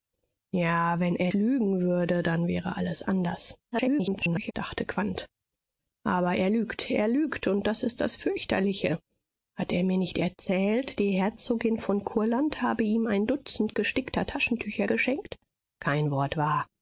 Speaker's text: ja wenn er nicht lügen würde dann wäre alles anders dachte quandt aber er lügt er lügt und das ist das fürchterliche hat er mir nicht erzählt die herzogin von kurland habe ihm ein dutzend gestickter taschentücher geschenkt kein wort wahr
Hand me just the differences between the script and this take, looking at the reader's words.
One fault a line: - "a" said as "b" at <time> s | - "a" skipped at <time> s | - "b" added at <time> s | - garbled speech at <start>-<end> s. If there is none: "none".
- "nicht" skipped at 1.3 s
- garbled speech at 3.7-4.5 s